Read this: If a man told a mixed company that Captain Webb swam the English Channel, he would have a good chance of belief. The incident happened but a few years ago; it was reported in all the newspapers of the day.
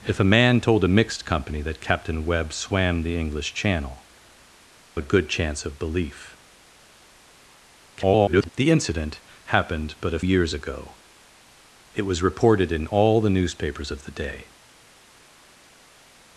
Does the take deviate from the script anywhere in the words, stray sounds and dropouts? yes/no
yes